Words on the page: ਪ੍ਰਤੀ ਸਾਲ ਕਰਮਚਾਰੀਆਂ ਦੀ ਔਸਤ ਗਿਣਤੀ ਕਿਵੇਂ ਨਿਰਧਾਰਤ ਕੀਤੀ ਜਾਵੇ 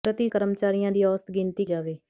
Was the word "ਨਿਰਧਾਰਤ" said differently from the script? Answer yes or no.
yes